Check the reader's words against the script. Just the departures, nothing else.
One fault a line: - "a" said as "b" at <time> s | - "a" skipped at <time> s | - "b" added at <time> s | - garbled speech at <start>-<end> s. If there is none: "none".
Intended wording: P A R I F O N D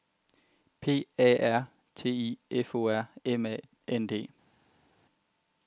- "T" added at 1.9 s
- "R M A" added at 2.9 s